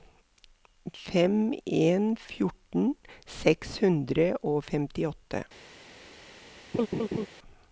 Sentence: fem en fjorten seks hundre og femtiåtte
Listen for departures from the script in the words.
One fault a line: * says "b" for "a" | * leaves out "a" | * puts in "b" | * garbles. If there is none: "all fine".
all fine